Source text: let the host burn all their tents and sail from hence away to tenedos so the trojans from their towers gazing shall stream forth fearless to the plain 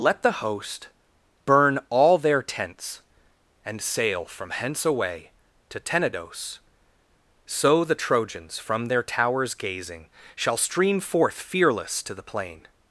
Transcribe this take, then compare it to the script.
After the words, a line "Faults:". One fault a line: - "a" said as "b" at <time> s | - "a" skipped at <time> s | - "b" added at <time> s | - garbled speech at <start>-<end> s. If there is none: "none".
let the host burn all their tents and sail from hence away to tenedos so the trojans from their towers gazing shall stream forth fearless to the plain
Faults:
none